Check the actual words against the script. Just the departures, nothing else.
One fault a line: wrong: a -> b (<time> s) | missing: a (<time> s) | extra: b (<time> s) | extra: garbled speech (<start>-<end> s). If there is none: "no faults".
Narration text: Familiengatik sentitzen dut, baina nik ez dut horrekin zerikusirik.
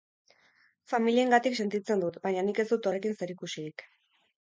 no faults